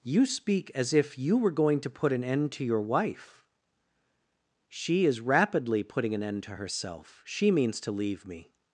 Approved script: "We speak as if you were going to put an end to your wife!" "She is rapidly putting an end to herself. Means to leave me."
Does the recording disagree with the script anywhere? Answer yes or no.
yes